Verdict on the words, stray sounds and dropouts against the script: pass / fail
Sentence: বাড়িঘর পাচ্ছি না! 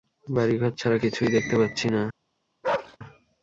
fail